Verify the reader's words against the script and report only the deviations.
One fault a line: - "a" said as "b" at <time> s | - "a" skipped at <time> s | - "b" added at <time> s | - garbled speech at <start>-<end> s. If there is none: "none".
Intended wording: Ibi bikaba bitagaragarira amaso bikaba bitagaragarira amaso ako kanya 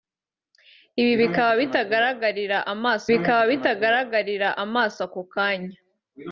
none